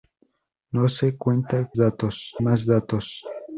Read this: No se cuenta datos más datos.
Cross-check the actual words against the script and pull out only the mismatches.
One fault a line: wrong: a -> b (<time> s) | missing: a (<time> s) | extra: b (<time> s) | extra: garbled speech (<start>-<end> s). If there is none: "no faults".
no faults